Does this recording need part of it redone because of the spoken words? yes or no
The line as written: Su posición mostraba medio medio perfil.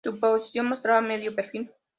yes